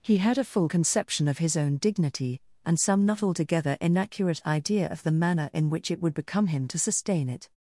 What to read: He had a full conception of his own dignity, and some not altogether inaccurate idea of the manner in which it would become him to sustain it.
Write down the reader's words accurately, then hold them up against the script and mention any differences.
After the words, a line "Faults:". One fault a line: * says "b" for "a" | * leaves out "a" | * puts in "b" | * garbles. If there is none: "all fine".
He had a full conception of his own dignity, and some not altogether inaccurate idea of the manner in which it would become him to sustain it.
Faults:
all fine